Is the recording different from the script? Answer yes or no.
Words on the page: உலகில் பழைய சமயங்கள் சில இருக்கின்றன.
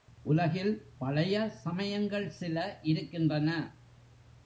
no